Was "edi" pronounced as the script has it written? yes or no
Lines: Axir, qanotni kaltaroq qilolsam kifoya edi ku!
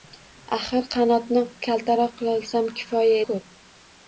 no